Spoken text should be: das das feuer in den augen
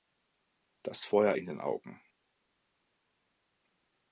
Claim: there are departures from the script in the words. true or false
true